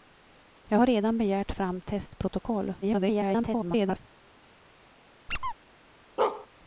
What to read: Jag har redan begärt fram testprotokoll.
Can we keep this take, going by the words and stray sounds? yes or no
no